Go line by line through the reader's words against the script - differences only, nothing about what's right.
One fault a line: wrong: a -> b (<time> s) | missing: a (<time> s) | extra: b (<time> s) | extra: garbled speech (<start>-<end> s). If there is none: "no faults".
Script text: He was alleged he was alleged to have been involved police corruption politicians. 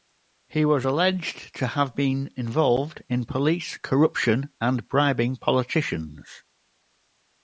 missing: he was alleged (1.5 s)
extra: in (3.1 s)
extra: and bribing (4.6 s)